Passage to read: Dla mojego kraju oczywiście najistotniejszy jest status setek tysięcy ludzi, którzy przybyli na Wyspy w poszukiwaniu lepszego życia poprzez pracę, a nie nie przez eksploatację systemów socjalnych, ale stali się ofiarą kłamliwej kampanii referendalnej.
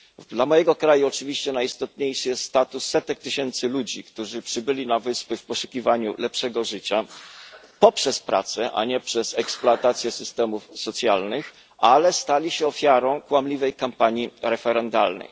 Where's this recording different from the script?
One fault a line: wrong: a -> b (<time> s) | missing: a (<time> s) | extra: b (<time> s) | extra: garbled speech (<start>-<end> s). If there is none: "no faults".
missing: nie (9.0 s)